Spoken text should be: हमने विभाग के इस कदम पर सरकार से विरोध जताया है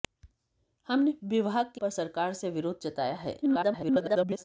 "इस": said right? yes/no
no